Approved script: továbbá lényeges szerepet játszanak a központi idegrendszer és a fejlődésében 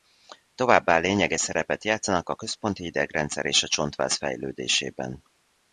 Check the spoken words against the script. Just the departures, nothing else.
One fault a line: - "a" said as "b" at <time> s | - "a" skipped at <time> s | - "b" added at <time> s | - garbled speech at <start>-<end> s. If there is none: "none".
- "csontváz" added at 3.7 s